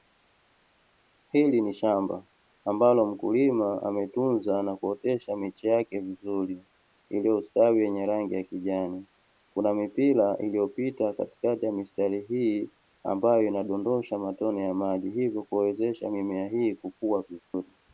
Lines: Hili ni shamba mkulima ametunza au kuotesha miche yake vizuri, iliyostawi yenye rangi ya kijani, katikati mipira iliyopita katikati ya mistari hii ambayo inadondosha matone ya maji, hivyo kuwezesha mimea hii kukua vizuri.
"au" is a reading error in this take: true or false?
true